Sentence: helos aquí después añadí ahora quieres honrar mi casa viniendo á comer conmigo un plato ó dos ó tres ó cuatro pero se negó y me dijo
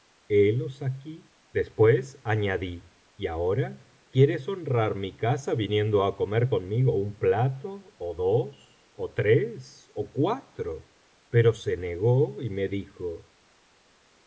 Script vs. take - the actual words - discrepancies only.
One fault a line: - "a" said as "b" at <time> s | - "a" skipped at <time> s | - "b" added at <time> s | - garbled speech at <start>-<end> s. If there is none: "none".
- "y" added at 3.2 s